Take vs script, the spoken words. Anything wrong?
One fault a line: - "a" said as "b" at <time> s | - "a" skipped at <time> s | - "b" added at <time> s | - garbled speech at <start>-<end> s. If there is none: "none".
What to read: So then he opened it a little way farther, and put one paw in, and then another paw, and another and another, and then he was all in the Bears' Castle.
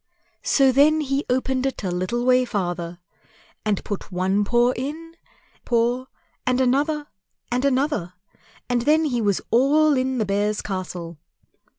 - "and then another" skipped at 5.1 s